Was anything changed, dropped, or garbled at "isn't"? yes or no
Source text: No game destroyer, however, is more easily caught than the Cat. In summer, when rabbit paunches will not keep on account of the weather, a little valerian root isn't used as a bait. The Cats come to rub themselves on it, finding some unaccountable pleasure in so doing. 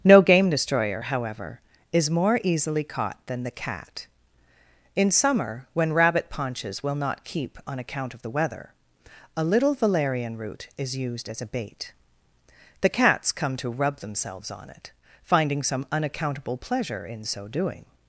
yes